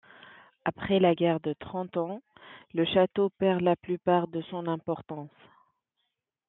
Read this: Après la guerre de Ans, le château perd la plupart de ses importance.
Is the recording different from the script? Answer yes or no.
yes